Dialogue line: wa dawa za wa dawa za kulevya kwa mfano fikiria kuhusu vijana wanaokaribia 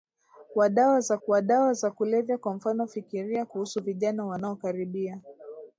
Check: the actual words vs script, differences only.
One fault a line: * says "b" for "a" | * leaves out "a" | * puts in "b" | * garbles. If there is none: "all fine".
all fine